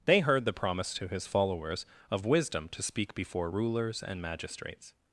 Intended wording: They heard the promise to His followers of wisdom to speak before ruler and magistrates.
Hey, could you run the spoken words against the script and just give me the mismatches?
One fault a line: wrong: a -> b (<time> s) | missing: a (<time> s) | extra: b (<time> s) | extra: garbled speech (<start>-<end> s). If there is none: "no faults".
wrong: ruler -> rulers (3.5 s)